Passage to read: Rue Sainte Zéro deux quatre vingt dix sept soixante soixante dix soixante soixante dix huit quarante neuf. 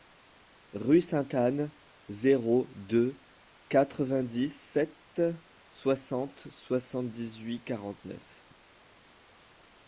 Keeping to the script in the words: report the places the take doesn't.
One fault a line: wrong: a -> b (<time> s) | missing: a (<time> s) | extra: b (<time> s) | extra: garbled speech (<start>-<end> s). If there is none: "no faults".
extra: Anne (1.4 s)
missing: soixante soixante dix (7.4 s)